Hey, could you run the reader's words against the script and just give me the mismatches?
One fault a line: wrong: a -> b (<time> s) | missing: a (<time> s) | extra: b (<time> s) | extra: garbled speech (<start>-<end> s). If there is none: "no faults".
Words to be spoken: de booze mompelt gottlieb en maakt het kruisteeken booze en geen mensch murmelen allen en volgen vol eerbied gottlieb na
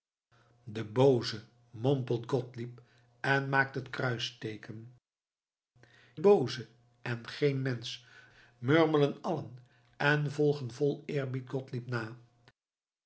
no faults